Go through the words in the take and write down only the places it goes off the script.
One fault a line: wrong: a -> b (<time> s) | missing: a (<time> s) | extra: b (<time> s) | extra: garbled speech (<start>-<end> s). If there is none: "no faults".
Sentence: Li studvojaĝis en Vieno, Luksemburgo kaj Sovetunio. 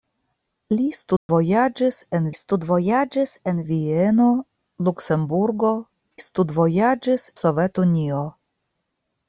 extra: studvojaĝis en (2.4 s)
wrong: kaj -> studvojaĝis (6.3 s)